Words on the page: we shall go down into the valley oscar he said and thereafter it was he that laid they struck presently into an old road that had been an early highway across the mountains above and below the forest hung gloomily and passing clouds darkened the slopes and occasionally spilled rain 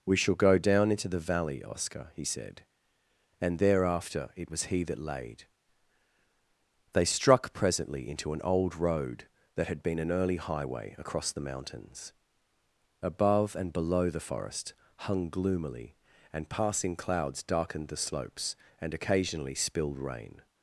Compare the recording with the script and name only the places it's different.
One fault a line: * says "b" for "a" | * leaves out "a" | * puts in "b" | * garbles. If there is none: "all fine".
all fine